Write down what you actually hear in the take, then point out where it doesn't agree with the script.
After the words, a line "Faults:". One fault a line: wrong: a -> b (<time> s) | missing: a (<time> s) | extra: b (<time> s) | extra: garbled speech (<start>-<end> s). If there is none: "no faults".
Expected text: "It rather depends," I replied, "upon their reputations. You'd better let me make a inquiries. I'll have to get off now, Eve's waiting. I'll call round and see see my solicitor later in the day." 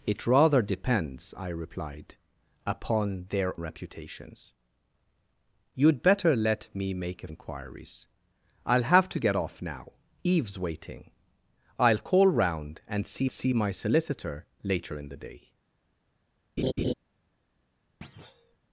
"It rather depends," I replied, "upon their reputations. You'd better let me make a inquiries. I'll have to get off now, Eve's waiting. I'll call round and see see my solicitor later in the day."
Faults:
no faults